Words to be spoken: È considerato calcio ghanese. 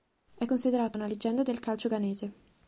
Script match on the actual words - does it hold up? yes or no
no